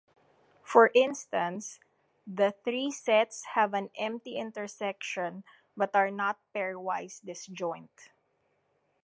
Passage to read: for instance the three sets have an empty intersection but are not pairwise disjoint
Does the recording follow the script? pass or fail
pass